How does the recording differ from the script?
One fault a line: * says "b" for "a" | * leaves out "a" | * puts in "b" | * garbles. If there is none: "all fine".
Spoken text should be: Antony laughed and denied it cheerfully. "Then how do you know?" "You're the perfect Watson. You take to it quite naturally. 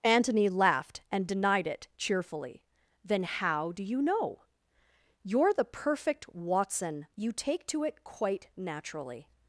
all fine